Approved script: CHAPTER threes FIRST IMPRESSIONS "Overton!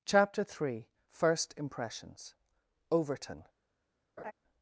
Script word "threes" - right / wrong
wrong